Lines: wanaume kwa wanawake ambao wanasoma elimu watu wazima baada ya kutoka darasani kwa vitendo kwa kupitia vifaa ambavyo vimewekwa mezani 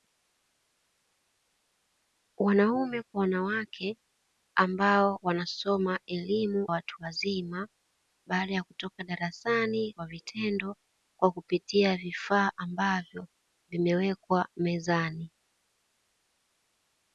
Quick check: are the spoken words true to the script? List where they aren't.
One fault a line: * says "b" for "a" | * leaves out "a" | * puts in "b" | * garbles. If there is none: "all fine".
all fine